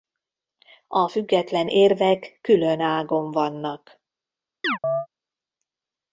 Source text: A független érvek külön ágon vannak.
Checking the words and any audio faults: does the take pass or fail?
fail